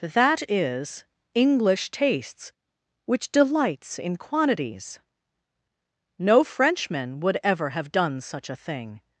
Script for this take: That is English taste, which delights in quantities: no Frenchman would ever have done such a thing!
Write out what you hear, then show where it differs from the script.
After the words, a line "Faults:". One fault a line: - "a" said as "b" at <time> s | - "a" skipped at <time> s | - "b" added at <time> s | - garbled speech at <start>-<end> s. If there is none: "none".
That is English tastes, which delights in quantities: no Frenchman would ever have done such a thing!
Faults:
- "taste" said as "tastes" at 1.9 s